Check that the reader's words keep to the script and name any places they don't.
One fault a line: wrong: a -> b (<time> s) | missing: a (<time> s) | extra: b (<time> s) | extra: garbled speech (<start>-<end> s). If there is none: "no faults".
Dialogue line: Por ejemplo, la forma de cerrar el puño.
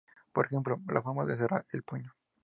no faults